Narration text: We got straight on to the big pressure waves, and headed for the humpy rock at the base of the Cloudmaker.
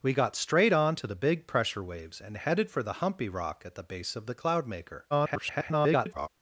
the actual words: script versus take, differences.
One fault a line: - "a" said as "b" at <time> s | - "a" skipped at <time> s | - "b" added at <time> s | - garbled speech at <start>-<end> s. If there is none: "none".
- garbled speech at 5.1-6.3 s